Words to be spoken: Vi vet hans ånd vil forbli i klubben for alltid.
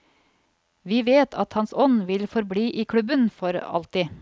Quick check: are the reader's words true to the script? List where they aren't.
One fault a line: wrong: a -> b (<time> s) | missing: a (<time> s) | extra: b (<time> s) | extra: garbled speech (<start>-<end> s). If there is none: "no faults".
extra: at (1.4 s)